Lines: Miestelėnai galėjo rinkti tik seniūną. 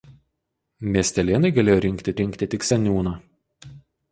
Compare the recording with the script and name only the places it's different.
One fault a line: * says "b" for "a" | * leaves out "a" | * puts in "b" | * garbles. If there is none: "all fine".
* puts in "rinkti"